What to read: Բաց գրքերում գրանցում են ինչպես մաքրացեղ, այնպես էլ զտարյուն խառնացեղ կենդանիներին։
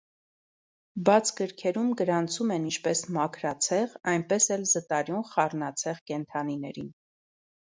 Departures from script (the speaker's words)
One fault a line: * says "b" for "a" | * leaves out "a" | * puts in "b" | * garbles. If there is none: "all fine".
all fine